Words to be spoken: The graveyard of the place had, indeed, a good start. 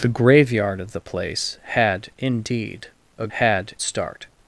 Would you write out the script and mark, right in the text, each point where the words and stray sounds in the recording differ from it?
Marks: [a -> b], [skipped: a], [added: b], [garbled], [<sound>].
The graveyard of the place had, indeed, a [good -> had] start.